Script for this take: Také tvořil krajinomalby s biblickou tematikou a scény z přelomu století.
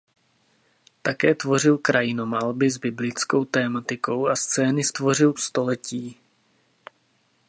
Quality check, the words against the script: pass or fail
fail